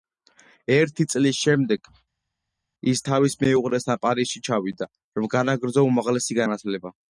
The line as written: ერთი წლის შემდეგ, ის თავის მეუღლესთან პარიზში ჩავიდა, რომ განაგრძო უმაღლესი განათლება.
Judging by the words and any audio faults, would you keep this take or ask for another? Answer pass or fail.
pass